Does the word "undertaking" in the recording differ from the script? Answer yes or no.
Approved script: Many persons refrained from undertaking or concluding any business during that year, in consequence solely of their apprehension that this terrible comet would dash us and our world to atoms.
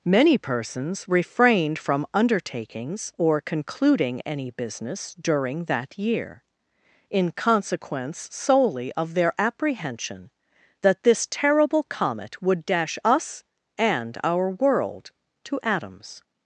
yes